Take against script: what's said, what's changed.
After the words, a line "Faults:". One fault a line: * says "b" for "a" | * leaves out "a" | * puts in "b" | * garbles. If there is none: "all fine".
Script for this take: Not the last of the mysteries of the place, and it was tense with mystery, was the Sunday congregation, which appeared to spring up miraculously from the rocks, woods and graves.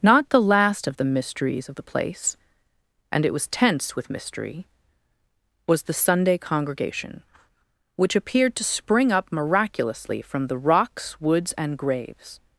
Not the last of the mysteries of the place, and it was tense with mystery, was the Sunday congregation, which appeared to spring up miraculously from the rocks, woods and graves.
Faults:
all fine